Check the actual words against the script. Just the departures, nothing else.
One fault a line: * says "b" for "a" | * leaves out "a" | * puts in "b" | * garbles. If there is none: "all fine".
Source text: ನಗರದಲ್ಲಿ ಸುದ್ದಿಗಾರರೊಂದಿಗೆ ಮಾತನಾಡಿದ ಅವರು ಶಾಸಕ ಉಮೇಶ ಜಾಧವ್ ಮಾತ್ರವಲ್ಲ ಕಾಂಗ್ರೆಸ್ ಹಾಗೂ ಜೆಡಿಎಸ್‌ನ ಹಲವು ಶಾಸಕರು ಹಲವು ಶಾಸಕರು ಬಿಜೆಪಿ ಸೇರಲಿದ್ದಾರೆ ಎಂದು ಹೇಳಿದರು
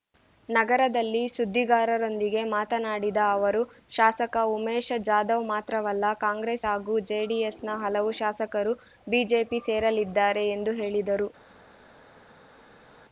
* leaves out "ಹಲವು ಶಾಸಕರು"